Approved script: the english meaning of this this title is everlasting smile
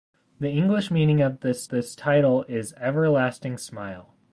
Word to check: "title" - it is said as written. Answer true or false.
true